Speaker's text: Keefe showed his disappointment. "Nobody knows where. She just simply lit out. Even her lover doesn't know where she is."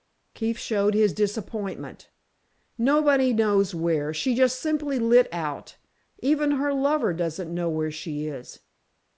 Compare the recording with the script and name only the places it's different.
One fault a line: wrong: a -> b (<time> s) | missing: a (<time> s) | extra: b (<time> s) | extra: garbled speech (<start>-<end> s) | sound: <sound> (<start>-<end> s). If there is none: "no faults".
no faults